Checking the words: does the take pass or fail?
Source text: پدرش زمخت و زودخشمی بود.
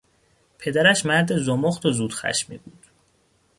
fail